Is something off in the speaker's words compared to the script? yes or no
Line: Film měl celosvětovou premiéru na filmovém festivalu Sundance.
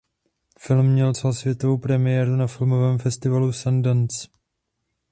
no